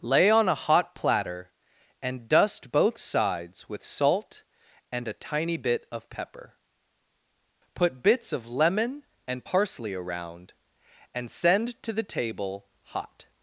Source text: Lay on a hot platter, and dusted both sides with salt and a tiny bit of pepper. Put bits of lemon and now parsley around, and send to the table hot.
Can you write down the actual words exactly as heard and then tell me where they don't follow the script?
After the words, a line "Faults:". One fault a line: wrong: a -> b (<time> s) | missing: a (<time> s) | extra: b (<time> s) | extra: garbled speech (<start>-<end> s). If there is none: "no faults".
Lay on a hot platter, and dust both sides with salt and a tiny bit of pepper. Put bits of lemon and parsley around, and send to the table hot.
Faults:
wrong: dusted -> dust (2.3 s)
missing: now (9.4 s)